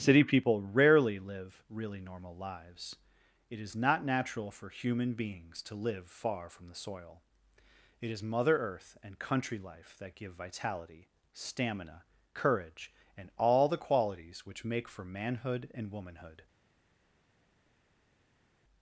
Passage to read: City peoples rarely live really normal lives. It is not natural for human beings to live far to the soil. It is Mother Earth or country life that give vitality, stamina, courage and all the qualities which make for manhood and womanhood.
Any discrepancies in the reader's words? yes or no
yes